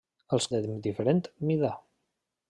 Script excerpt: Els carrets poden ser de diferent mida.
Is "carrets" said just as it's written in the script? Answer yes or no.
no